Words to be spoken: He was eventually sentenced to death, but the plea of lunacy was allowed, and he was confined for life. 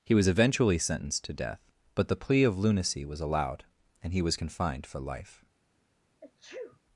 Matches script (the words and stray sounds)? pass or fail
fail